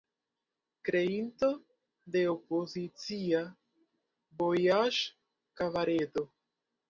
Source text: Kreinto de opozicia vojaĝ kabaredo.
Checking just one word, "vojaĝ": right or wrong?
right